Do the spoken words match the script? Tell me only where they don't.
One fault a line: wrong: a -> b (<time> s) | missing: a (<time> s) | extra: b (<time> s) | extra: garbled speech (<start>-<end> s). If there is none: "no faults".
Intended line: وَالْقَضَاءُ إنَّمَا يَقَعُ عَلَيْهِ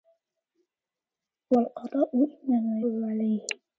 missing: يَقَعُ (2.8 s)